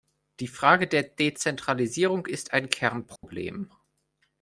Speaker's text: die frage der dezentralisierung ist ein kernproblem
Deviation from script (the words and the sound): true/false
true